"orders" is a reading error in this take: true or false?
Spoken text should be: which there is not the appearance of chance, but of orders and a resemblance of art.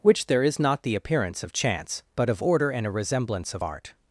true